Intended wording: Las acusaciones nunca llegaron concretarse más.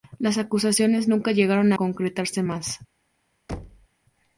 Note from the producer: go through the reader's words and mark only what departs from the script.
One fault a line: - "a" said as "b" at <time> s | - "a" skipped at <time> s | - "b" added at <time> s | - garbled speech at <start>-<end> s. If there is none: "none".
none